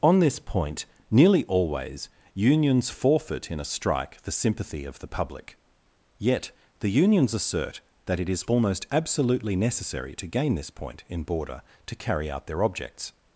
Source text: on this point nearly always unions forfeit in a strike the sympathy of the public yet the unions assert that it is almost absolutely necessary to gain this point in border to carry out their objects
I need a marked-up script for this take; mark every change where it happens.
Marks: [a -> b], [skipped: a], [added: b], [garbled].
on this point nearly always unions forfeit in a strike the sympathy of the public yet the unions assert that it is almost absolutely necessary to gain this point in border to carry out their objects